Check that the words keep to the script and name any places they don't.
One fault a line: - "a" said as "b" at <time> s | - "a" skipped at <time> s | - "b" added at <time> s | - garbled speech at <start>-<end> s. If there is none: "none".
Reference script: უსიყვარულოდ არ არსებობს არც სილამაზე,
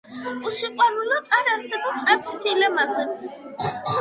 none